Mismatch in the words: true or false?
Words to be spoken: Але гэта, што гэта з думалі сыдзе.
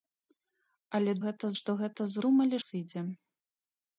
false